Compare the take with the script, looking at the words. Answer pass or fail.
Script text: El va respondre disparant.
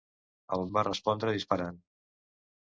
pass